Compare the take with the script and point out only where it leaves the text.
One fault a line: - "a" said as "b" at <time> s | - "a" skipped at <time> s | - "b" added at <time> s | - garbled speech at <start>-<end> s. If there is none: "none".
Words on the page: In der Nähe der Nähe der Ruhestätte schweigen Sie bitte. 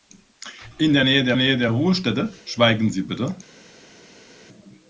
none